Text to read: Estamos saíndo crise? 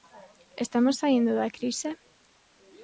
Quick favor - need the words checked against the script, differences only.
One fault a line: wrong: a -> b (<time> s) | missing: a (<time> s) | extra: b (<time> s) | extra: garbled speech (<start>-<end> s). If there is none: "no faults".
extra: da (1.4 s)